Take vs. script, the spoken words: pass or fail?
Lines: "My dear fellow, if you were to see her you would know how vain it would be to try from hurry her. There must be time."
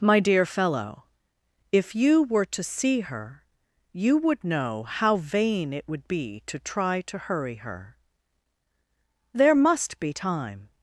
fail